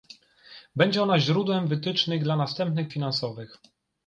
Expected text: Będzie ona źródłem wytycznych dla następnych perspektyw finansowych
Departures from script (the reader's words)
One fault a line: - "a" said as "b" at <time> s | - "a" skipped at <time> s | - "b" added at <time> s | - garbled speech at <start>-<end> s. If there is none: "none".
- "perspektyw" skipped at 2.9 s